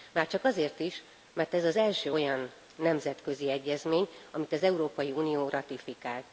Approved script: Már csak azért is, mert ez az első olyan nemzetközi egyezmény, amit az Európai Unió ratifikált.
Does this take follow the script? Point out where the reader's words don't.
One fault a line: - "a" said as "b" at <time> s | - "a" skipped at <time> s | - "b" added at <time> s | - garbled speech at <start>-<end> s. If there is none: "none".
none